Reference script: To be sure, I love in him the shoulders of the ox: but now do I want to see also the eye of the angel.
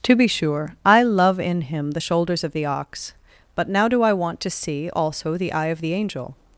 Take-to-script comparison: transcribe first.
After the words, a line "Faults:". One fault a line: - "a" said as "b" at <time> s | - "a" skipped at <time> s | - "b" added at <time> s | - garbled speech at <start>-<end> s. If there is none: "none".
To be sure, I love in him the shoulders of the ox: but now do I want to see also the eye of the angel.
Faults:
none